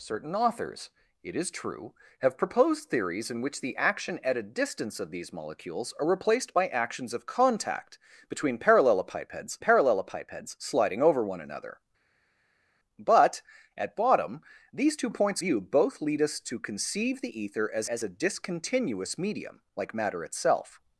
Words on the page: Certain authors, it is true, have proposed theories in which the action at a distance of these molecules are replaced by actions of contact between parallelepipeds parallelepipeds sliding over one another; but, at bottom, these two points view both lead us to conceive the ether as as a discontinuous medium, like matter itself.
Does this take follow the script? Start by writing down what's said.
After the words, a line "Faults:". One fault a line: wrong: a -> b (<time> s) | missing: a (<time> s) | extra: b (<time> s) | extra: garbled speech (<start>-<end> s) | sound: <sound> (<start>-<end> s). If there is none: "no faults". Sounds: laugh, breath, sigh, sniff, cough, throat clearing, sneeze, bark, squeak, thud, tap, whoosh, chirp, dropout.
Certain authors, it is true, have proposed theories in which the action at a distance of these molecules are replaced by actions of contact between parallelepipeds parallelepipeds sliding over one another; but, at bottom, these two points view both lead us to conceive the ether as as a discontinuous medium, like matter itself.
Faults:
no faults